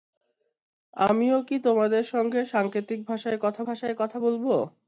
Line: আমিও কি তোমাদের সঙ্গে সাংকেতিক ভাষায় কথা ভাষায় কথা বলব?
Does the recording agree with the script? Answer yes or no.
yes